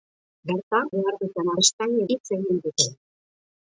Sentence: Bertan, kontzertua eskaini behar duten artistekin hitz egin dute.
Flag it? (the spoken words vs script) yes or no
yes